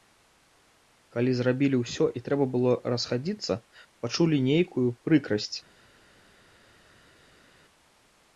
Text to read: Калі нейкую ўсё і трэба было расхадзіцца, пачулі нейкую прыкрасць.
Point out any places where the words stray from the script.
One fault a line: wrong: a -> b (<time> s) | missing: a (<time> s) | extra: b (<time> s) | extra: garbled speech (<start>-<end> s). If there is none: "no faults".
wrong: нейкую -> зрабілі (1.4 s)